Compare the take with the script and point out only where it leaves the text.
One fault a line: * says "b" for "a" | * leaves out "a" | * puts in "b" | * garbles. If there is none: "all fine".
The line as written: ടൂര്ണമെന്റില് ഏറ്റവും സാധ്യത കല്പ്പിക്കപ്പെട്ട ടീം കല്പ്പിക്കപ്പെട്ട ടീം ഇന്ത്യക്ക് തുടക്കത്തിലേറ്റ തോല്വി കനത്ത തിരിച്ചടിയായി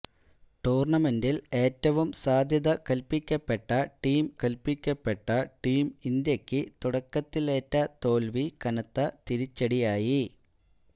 all fine